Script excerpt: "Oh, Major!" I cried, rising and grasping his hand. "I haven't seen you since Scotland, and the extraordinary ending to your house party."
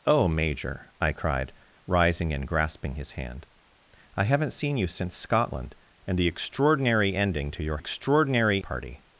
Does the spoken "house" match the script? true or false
false